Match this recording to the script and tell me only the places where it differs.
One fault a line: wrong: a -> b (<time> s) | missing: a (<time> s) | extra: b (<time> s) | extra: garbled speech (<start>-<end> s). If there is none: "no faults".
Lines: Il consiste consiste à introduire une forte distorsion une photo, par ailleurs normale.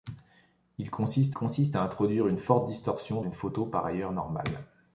no faults